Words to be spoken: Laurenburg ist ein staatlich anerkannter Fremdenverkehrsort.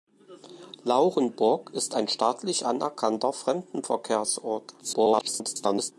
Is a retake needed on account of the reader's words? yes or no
yes